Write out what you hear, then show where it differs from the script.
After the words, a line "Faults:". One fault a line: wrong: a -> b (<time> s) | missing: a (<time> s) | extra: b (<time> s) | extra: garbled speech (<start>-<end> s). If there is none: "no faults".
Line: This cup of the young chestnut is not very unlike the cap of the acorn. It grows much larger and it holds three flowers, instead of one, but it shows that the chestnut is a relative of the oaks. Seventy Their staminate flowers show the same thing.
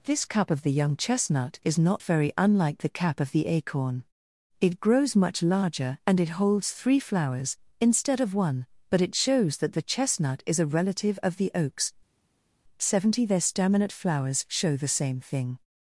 This cup of the young chestnut is not very unlike the cap of the acorn. It grows much larger and it holds three flowers, instead of one, but it shows that the chestnut is a relative of the oaks. Seventy Their staminate flowers show the same thing.
Faults:
no faults